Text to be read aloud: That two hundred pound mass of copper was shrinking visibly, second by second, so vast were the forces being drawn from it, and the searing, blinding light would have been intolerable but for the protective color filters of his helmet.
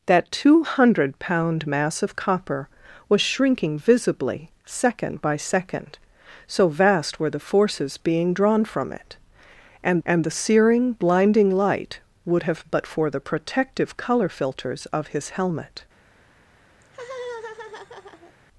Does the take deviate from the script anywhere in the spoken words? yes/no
yes